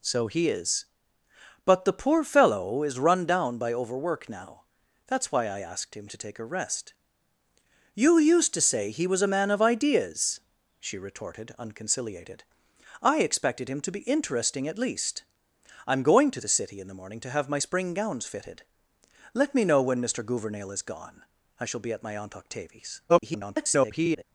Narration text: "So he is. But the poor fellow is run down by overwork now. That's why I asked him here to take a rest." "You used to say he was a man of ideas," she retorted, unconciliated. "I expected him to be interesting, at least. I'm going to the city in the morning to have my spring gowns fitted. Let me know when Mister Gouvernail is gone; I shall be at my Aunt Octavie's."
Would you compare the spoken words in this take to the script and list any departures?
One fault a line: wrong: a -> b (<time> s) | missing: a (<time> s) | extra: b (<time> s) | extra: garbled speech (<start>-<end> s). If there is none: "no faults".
missing: here (6.1 s)
extra: garbled speech (23.1-24.2 s)